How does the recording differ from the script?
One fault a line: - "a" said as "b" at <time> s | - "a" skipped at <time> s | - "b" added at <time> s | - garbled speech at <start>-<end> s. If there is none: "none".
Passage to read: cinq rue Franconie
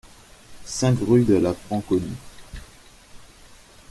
- "de la" added at 1.2 s